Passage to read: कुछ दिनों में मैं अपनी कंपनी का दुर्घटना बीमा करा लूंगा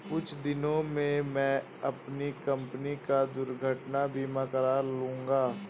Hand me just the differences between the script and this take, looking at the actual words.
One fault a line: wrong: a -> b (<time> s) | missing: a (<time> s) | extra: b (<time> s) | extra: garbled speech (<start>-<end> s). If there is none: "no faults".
no faults